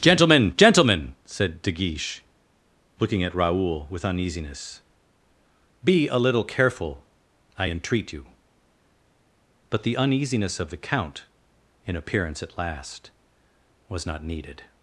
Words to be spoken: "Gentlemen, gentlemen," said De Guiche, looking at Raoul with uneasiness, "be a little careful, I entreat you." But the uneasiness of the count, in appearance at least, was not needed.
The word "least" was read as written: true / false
false